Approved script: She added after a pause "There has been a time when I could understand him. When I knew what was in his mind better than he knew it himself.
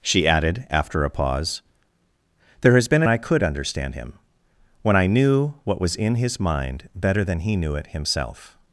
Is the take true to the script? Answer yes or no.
no